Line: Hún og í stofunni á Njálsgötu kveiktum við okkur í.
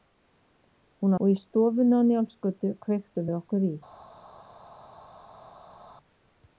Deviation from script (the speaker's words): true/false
false